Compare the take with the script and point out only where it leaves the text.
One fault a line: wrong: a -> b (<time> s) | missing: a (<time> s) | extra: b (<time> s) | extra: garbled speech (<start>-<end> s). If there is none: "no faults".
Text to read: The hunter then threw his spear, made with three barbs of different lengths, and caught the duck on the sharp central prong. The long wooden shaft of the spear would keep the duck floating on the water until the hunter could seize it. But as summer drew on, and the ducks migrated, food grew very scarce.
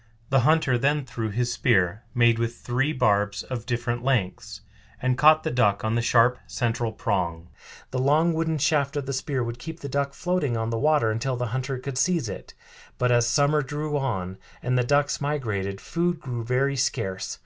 no faults